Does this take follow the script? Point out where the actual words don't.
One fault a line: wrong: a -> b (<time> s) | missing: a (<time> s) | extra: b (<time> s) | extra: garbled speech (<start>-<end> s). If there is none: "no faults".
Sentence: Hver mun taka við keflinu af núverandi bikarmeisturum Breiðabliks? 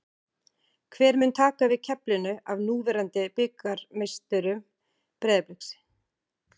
no faults